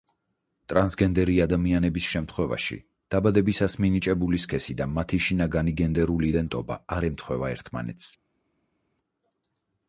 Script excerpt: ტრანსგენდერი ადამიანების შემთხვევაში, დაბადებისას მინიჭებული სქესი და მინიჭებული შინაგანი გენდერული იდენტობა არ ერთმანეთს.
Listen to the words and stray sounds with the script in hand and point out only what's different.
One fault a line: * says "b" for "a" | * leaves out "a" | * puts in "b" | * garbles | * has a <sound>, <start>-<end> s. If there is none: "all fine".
* says "მათი" for "მინიჭებული"
* puts in "ემთხვევა"